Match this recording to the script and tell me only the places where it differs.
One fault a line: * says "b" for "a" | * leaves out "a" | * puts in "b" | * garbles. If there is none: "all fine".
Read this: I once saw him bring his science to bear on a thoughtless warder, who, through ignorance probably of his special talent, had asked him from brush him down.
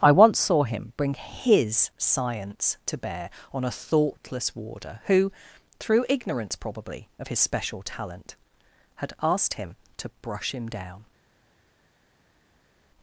* says "to" for "from"